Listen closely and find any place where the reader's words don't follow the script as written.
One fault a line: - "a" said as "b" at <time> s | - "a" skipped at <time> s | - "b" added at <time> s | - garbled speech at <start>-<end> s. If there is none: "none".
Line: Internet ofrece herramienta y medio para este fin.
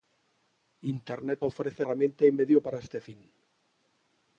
none